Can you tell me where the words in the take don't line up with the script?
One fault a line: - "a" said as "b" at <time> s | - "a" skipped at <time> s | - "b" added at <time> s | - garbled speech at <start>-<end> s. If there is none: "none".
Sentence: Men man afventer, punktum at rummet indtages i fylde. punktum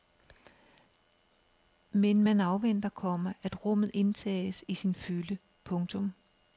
- "punktum" said as "komma" at 2.9 s
- "sin" added at 4.7 s